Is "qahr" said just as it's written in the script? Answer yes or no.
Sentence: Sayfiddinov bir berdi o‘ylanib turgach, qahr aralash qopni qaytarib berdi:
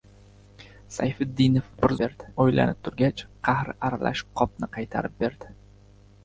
yes